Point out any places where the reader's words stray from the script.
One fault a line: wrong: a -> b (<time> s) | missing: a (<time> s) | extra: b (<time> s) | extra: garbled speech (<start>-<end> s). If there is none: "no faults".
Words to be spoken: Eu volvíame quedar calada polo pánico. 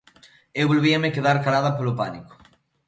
no faults